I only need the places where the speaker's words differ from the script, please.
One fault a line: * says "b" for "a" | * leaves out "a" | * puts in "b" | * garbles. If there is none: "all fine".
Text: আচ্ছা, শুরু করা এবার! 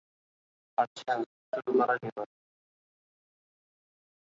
all fine